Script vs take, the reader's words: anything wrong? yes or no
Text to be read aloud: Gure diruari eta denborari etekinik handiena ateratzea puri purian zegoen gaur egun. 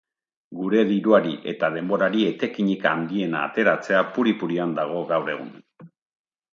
yes